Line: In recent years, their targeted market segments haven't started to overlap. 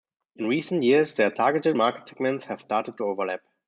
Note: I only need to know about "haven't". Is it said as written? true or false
false